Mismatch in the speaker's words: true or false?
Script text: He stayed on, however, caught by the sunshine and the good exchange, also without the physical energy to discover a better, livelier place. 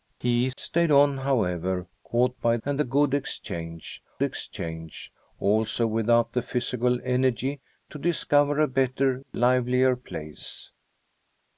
true